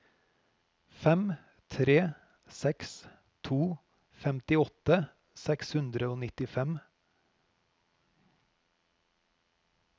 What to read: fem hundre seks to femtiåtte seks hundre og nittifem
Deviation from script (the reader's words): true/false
true